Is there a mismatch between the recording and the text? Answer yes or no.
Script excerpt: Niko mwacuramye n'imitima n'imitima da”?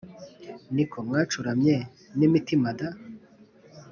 yes